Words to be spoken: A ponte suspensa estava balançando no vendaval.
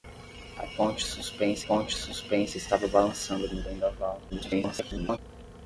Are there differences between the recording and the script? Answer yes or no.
yes